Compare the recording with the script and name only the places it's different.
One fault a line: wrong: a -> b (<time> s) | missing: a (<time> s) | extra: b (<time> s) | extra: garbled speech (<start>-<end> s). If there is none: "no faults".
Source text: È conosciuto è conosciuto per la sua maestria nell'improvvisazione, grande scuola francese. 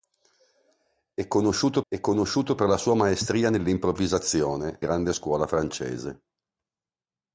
no faults